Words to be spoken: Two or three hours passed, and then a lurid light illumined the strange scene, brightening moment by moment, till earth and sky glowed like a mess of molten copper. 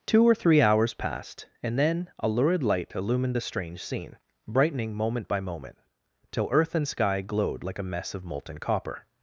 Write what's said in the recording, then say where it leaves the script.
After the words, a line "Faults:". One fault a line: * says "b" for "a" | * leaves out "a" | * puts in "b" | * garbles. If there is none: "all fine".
Two or three hours passed, and then a lurid light illumined the strange scene, brightening moment by moment, till earth and sky glowed like a mess of molten copper.
Faults:
all fine